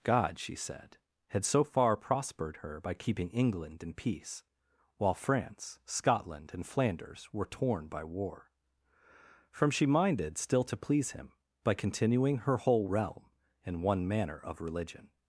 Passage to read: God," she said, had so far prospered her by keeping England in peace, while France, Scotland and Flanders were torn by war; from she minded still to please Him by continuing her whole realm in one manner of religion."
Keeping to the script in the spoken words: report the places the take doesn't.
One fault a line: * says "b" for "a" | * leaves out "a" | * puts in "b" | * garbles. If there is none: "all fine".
all fine